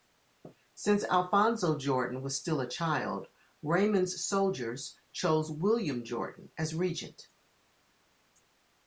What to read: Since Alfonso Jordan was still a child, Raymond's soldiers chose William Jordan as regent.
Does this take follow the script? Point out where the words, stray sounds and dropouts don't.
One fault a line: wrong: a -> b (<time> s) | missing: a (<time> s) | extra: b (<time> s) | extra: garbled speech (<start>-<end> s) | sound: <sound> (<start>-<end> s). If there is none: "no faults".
no faults